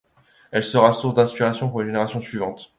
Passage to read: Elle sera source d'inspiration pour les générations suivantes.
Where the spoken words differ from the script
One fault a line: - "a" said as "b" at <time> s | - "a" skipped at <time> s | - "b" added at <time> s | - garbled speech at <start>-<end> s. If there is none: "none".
none